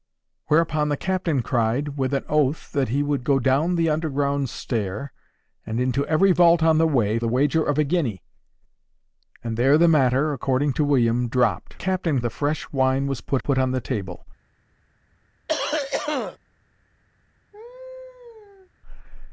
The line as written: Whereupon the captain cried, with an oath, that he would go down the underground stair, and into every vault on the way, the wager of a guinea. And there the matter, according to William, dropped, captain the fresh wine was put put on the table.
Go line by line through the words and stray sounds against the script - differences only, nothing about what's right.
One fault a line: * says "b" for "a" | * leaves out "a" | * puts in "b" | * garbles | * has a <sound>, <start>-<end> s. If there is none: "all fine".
* has a cough, 15.5-16.4 s
* has a laugh, 17.5-18.7 s